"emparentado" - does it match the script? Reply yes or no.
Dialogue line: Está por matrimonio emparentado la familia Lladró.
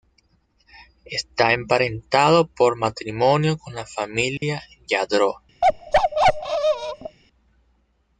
no